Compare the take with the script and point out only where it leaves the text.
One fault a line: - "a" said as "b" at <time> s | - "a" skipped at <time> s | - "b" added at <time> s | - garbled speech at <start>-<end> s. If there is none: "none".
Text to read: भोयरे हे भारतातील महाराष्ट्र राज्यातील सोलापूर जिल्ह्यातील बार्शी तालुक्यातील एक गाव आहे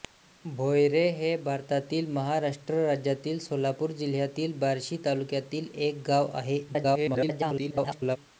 - garbled speech at 6.7-8.2 s